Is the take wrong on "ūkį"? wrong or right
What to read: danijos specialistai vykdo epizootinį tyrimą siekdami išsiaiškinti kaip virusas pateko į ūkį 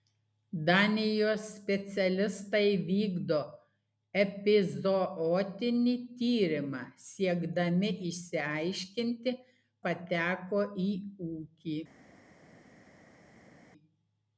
right